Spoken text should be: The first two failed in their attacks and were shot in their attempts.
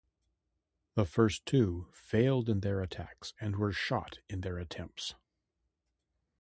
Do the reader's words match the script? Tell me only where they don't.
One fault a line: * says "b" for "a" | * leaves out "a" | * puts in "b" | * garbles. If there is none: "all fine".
all fine